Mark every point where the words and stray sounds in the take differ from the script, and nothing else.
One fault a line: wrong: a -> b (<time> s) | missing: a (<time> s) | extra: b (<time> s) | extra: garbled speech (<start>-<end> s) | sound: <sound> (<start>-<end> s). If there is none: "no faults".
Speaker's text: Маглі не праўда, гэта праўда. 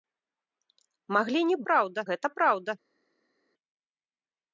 no faults